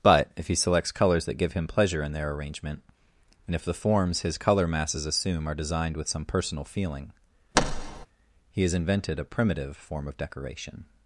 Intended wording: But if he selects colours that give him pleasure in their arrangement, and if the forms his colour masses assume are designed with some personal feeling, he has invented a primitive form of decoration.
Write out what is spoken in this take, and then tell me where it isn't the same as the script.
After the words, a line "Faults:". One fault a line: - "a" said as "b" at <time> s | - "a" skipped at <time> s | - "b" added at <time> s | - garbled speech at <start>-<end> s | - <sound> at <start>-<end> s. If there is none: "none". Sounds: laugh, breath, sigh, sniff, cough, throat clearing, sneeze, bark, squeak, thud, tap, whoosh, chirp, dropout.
But if he selects colours that give him pleasure in their arrangement, and if the forms his colour masses assume are designed with some personal feeling, he has invented a primitive form of decoration.
Faults:
- thud at 7.5-8.1 s